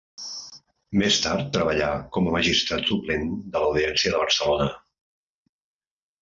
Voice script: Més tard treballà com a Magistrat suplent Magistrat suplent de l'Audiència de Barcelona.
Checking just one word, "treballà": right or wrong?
right